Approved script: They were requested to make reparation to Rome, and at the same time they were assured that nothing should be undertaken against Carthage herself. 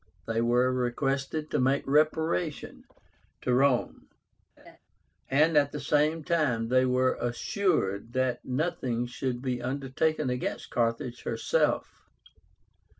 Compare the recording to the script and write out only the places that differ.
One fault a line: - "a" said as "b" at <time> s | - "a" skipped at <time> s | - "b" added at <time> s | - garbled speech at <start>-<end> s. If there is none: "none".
none